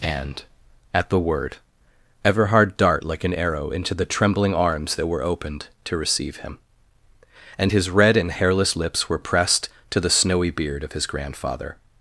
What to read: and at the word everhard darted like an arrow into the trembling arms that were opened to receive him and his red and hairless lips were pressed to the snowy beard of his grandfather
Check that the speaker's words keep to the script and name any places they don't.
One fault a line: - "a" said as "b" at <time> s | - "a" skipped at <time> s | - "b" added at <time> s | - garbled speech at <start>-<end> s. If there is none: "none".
- "darted" said as "dart" at 2.8 s